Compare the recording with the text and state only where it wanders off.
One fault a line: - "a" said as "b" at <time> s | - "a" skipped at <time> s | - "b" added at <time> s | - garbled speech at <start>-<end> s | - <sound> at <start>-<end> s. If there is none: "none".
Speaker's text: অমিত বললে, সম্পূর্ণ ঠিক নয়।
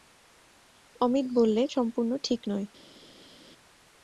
none